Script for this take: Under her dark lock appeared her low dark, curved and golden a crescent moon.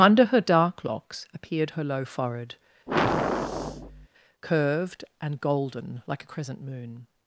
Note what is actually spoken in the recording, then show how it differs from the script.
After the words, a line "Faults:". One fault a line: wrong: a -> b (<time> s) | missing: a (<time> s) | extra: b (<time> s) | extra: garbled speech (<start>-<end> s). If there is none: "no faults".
Under her dark locks appeared her low forehead, curved and golden like a crescent moon.
Faults:
wrong: lock -> locks (0.8 s)
wrong: dark -> forehead (2.0 s)
extra: like (6.0 s)